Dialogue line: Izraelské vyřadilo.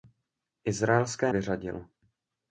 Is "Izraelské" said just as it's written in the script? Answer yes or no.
yes